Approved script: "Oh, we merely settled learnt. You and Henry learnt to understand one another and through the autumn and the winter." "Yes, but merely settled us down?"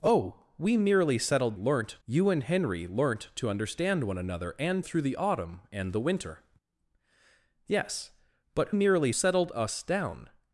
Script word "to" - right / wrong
right